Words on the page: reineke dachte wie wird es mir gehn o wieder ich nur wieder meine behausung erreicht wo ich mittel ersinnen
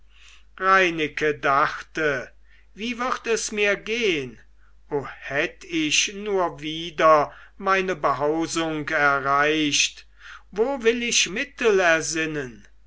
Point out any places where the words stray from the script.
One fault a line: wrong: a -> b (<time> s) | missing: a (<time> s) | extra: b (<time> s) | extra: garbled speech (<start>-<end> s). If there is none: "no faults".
wrong: wieder -> hätt (5.0 s)
extra: will (10.8 s)